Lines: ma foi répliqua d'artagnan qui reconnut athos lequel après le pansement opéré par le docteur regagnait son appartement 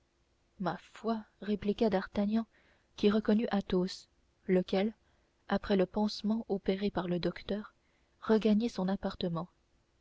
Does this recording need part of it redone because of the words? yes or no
no